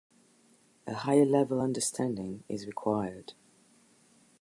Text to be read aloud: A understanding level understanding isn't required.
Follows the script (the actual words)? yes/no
no